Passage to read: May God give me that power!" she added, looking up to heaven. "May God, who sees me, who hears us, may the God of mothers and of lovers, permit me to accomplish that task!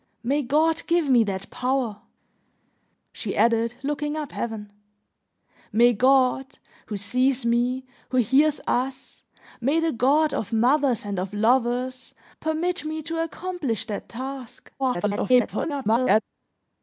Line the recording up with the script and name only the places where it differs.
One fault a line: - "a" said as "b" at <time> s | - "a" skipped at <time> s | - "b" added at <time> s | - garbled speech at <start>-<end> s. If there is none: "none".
- "to" skipped at 4.3 s
- garbled speech at 14.8-16.2 s